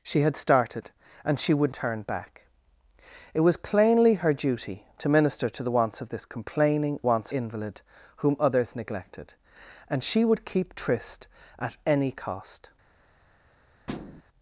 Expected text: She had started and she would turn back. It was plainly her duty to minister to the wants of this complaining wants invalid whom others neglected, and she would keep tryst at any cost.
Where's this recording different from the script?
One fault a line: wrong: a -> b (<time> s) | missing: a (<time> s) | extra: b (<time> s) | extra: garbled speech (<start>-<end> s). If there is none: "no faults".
no faults